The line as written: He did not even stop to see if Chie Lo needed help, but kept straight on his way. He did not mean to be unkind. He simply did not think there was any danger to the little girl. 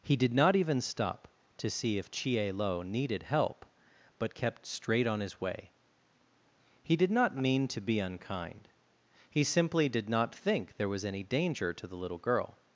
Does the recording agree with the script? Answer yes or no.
yes